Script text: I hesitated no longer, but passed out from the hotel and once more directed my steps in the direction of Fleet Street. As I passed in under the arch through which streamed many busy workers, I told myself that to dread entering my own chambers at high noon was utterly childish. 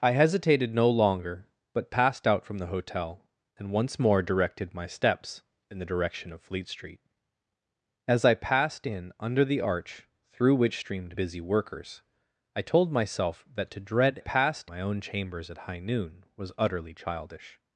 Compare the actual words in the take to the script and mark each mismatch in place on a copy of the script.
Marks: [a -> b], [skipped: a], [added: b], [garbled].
I hesitated no longer, but passed out from the hotel and once more directed my steps in the direction of Fleet Street. As I passed in under the arch through which streamed [skipped: many] busy workers, I told myself that to dread [entering -> passed] my own chambers at high noon was utterly childish.